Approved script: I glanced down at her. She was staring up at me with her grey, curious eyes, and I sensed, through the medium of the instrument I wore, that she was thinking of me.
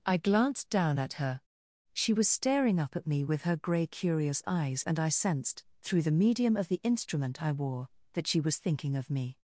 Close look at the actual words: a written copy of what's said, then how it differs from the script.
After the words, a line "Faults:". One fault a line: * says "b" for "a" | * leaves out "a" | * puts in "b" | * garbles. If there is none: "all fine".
I glanced down at her. She was staring up at me with her grey, curious eyes, and I sensed, through the medium of the instrument I wore, that she was thinking of me.
Faults:
all fine